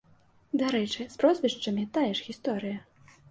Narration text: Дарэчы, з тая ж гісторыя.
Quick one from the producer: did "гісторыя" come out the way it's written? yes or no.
yes